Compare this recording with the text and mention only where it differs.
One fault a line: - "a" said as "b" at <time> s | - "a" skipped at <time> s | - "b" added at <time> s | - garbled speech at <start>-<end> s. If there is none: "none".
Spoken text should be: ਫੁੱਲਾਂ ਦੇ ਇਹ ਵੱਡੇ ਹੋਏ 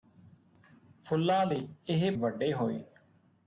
none